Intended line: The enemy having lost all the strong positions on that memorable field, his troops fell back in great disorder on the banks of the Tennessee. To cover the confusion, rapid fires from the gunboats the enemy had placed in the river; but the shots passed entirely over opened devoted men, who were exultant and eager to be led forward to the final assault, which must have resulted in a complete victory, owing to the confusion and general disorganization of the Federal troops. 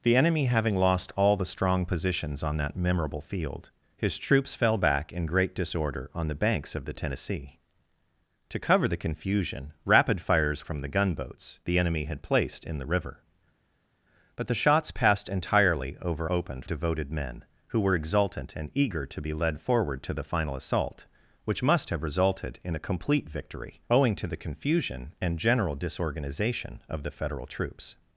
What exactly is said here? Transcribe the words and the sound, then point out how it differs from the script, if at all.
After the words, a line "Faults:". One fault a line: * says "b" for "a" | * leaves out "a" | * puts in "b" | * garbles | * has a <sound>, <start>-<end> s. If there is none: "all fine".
The enemy having lost all the strong positions on that memorable field, his troops fell back in great disorder on the banks of the Tennessee. To cover the confusion, rapid fires from the gunboats the enemy had placed in the river; but the shots passed entirely over opened devoted men, who were exultant and eager to be led forward to the final assault, which must have resulted in a complete victory, owing to the confusion and general disorganization of the Federal troops.
Faults:
all fine